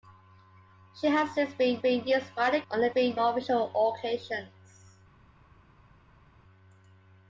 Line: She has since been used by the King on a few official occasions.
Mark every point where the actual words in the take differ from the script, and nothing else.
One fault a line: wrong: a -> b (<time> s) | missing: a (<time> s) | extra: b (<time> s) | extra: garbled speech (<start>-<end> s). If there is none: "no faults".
extra: been (1.8 s)
missing: King (2.6 s)
wrong: few -> been (2.9 s)